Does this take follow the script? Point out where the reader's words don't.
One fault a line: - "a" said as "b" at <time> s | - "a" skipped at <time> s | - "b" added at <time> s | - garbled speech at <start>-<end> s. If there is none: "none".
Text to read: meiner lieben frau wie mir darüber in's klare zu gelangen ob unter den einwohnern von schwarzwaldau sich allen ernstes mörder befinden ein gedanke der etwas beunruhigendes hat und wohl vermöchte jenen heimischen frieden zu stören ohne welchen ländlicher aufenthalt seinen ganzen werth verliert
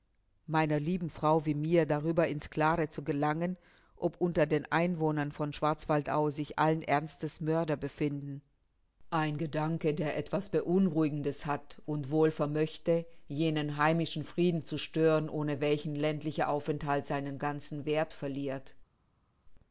none